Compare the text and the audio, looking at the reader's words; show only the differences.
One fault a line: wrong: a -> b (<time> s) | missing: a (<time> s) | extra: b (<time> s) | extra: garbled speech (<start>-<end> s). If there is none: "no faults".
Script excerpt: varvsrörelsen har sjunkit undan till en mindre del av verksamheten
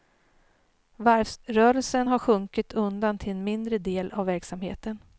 no faults